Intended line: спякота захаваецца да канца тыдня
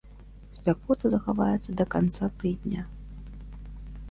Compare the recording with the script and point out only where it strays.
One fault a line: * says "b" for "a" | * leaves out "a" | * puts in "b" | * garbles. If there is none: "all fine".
all fine